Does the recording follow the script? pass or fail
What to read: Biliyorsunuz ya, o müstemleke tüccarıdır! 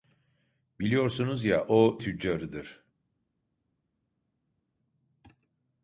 fail